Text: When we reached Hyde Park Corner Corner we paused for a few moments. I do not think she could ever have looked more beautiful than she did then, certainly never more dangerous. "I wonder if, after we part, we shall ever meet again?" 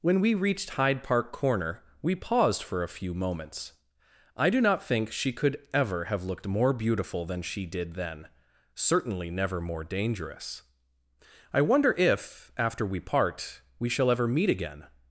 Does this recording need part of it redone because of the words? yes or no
yes